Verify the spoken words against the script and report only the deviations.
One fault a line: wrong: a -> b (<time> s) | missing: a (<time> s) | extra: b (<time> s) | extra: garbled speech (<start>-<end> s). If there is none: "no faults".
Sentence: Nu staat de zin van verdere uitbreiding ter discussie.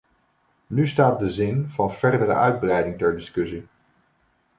no faults